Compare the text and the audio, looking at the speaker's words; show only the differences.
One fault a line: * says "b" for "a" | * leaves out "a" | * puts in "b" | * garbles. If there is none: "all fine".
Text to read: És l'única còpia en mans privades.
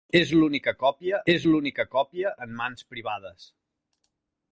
* puts in "és l'única còpia"